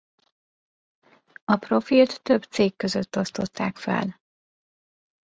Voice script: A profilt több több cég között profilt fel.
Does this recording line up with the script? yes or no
no